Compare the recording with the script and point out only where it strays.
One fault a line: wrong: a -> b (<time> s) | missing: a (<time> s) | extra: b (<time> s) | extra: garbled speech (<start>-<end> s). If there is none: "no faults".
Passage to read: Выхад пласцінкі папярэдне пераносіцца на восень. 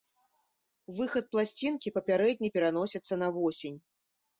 no faults